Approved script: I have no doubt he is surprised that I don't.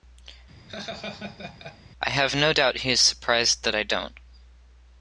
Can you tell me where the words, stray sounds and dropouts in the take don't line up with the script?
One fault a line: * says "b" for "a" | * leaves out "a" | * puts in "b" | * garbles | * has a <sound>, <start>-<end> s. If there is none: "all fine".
* has a laugh, 0.7-1.8 s